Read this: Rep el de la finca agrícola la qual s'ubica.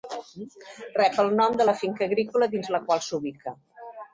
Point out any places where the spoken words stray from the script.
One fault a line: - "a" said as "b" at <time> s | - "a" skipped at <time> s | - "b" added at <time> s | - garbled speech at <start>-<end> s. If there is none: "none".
- "nom" added at 1.4 s
- "dins" added at 2.6 s